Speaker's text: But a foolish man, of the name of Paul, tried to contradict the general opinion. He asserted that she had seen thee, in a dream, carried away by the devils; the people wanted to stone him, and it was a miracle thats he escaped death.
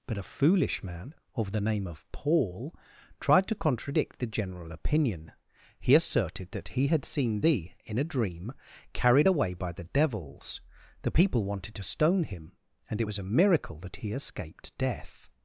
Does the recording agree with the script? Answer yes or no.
no